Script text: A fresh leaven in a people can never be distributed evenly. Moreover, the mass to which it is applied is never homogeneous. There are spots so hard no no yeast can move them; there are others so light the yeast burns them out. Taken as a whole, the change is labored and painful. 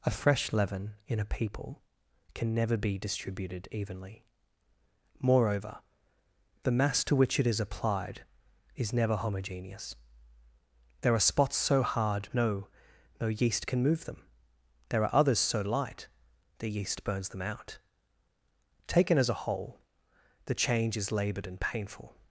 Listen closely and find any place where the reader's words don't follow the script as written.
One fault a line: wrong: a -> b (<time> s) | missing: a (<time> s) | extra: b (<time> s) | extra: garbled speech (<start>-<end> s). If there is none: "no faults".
no faults